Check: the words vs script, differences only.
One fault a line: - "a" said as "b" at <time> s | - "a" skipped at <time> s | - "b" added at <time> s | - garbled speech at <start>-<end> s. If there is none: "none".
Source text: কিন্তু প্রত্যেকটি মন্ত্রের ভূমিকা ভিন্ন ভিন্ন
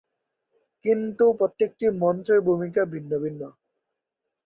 none